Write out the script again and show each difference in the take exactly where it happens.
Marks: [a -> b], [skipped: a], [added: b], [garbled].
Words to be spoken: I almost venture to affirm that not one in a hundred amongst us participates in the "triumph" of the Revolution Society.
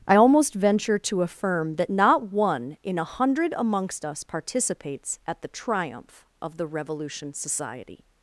I almost venture to affirm that not one in a hundred amongst us participates [in -> at] the "triumph" of the Revolution Society.